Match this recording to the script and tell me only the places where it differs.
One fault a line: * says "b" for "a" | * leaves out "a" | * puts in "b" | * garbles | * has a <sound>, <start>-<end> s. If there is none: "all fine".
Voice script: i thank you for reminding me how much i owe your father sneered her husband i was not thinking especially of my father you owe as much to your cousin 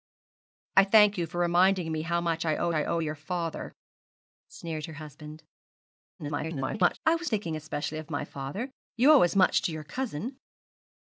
* puts in "i owe"
* garbles
* leaves out "not"